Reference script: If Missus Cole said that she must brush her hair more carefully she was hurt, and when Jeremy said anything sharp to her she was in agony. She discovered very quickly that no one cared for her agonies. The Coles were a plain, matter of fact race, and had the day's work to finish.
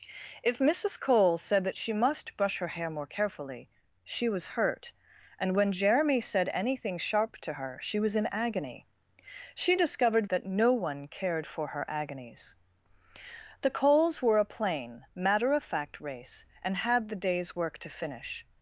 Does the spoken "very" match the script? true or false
false